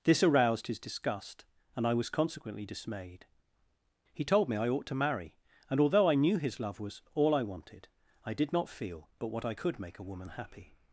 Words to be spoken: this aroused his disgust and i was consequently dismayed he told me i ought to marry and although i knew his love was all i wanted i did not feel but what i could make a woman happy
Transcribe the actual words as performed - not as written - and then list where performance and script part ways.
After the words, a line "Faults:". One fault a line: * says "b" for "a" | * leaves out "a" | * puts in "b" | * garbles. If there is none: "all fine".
this aroused his disgust and i was consequently dismayed he told me i ought to marry and although i knew his love was all i wanted i did not feel but what i could make a woman happy
Faults:
all fine